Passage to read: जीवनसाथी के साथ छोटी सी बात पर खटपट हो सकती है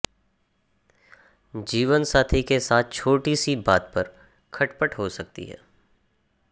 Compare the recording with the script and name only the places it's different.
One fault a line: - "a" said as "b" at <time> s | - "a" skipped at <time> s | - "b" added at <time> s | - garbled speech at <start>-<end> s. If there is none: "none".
none